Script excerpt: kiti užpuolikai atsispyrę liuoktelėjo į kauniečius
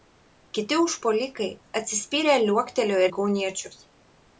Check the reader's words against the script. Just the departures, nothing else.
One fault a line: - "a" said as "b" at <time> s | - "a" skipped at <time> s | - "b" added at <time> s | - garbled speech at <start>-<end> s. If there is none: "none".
none